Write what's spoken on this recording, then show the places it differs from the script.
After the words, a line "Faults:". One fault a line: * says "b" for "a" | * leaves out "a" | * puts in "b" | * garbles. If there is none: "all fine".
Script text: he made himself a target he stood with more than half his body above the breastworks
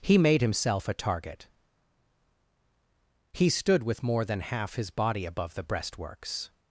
he made himself a target he stood with more than half his body above the breastworks
Faults:
all fine